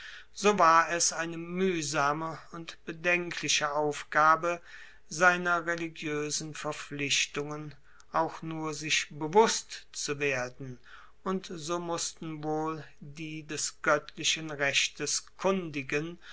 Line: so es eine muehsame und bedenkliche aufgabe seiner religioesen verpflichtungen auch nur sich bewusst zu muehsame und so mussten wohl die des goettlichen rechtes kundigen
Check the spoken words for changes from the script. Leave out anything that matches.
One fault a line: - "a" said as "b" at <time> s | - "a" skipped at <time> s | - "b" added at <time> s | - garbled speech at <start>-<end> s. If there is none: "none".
- "war" added at 0.6 s
- "muehsame" said as "werden" at 10.2 s